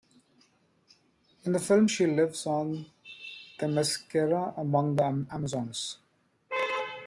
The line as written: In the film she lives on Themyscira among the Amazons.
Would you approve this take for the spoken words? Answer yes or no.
yes